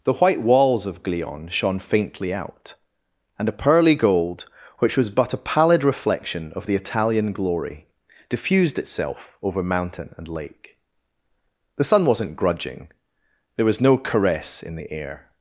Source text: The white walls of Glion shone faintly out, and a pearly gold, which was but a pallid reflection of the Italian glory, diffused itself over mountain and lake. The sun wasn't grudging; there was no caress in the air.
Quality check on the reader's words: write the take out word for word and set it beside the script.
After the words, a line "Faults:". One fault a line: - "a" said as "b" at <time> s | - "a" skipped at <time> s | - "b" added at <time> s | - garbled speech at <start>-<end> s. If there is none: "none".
The white walls of Glion shone faintly out, and a pearly gold, which was but a pallid reflection of the Italian glory, diffused itself over mountain and lake. The sun wasn't grudging; there was no caress in the air.
Faults:
none